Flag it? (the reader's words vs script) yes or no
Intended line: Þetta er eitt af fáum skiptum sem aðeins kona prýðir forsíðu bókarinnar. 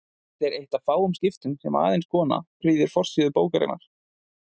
no